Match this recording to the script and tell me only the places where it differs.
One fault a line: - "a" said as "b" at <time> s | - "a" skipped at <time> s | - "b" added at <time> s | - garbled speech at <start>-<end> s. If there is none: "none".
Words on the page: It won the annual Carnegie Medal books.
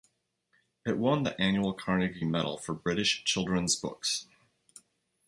- "for British children's" added at 2.6 s